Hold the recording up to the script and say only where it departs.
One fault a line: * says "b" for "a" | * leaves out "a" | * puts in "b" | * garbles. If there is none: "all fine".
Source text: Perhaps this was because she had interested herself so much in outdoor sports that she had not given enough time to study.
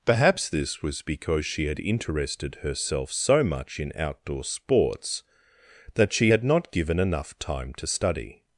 all fine